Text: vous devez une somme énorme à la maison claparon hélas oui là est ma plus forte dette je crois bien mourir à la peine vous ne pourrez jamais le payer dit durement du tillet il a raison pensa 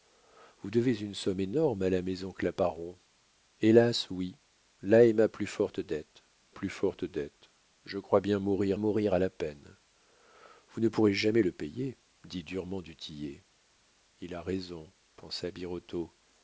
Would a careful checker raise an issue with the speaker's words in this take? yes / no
yes